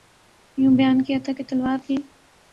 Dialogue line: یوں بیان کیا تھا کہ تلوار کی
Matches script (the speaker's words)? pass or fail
pass